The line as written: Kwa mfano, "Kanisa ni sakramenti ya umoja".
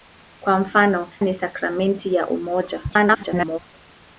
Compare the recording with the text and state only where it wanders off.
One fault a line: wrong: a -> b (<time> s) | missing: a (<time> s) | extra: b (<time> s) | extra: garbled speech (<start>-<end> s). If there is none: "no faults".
missing: Kanisa (1.1 s)
extra: garbled speech (2.9-3.6 s)